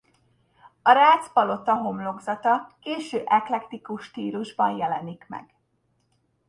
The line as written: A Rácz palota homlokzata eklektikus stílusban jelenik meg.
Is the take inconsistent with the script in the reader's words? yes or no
yes